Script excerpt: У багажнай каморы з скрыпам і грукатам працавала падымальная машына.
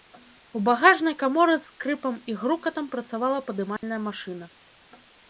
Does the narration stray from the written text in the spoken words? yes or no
no